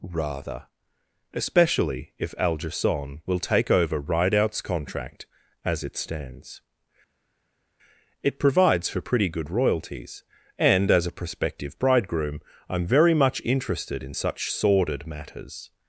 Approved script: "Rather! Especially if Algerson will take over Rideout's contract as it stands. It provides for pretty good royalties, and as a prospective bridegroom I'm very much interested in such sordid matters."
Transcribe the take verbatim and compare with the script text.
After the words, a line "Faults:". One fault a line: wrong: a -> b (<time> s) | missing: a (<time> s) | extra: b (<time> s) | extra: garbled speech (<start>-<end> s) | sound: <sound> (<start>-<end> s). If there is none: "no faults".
"Rather! Especially if Algerson will take over Rideout's contract as it stands. It provides for pretty good royalties, and as a prospective bridegroom I'm very much interested in such sordid matters."
Faults:
no faults